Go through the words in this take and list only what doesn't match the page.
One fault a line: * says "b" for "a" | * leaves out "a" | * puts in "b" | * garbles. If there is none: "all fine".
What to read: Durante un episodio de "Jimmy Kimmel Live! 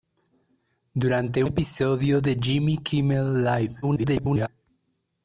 * leaves out "un"
* garbles